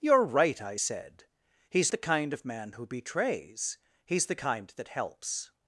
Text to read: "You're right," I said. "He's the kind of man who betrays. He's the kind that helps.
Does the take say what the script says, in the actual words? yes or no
yes